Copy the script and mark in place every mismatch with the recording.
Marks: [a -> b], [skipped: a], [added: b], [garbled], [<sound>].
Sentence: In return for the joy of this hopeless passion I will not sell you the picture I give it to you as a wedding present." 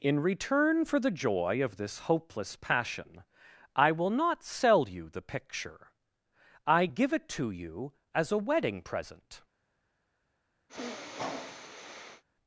In return for the joy of this hopeless passion I will not sell you the picture I give it to you as a wedding present." [sniff]